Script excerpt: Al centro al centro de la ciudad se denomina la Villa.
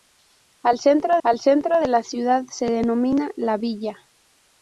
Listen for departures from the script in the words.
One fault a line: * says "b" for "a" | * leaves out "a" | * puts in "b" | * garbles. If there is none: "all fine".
all fine